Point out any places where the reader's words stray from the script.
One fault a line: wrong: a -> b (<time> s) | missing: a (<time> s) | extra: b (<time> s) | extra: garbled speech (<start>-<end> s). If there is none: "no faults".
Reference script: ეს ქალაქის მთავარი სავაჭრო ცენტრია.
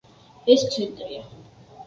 missing: ქალაქის მთავარი სავაჭრო (0.6 s)